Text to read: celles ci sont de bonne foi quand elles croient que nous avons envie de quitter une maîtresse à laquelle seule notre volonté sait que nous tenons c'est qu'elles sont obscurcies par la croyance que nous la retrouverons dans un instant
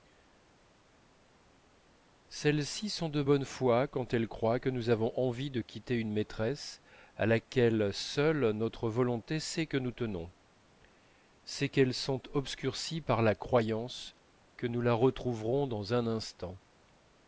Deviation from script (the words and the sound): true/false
false